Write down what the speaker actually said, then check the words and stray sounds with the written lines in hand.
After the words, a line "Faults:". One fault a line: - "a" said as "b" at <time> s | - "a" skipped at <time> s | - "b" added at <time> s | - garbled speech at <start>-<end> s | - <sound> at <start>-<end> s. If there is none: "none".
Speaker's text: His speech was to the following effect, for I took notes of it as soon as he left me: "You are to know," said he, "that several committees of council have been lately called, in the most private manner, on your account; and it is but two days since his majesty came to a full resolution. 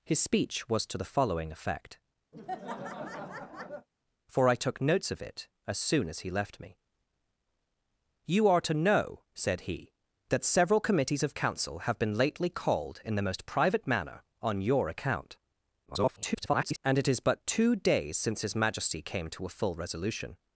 His speech was to the following effect, for I took notes of it as soon as he left me: "You are to know," said he, "that several committees of council have been lately called, in the most private manner, on your account; [garbled] and it is but two days since his majesty came to a full resolution.
Faults:
- laugh at 2.3-3.9 s
- garbled speech at 15.9-16.8 s